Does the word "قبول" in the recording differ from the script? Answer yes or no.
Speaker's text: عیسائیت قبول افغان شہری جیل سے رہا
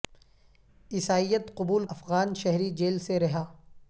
no